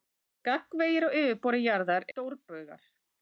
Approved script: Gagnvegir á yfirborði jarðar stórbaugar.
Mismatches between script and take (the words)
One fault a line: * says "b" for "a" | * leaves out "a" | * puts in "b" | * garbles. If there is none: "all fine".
all fine